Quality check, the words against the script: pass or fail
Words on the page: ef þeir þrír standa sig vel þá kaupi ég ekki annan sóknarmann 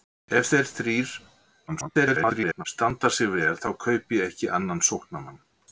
fail